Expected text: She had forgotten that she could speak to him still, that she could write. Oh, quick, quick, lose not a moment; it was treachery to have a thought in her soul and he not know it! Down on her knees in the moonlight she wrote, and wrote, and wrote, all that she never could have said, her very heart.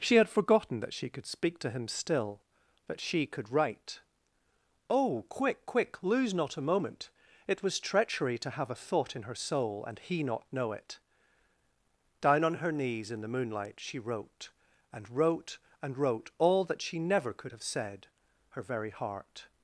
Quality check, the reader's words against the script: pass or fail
pass